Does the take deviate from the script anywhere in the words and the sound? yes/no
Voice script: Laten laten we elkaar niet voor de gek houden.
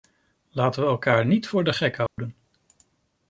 yes